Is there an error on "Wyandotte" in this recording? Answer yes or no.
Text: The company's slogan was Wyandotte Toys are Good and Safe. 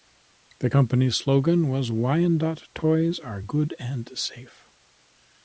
no